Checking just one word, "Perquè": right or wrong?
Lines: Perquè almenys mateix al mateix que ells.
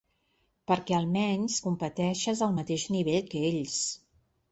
right